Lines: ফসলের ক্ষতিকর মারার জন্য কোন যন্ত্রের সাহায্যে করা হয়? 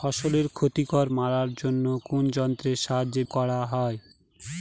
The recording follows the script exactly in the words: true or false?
true